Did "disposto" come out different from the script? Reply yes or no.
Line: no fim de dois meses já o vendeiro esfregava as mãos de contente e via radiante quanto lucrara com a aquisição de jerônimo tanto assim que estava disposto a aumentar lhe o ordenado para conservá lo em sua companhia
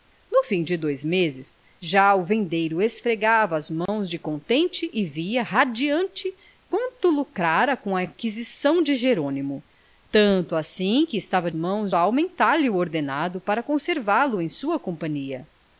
yes